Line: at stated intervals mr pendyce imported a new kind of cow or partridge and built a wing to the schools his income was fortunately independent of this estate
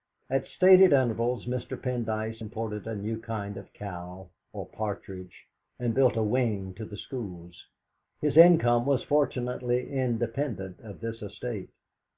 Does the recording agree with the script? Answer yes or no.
yes